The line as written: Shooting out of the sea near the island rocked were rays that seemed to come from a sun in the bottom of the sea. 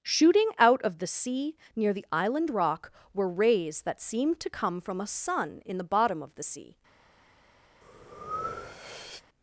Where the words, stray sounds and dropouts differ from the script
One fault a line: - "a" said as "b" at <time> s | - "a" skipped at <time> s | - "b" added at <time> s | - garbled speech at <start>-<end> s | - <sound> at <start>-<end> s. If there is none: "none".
- "rocked" said as "rock" at 2.5 s
- breath at 7.8-9.2 s